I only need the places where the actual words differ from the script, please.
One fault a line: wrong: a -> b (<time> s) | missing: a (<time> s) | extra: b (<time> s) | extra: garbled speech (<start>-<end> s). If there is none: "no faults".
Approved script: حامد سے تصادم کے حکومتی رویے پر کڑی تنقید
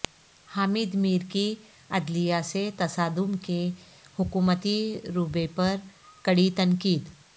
extra: میر کی عدلیہ (0.9 s)